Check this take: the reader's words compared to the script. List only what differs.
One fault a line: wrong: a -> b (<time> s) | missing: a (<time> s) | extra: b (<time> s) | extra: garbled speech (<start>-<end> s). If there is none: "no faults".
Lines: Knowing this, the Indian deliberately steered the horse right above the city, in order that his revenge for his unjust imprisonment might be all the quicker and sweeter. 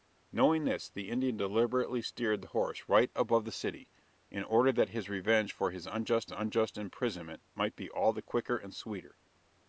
extra: unjust (6.3 s)